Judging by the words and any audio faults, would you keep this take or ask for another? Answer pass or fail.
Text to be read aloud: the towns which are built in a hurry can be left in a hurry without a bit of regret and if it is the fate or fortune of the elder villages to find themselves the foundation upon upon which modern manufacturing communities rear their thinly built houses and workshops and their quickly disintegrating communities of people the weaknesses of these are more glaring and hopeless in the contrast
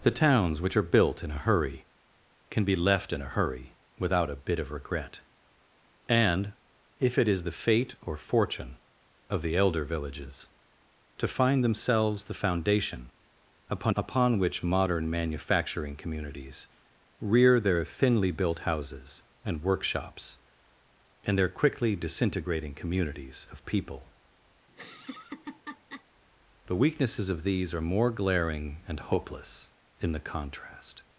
fail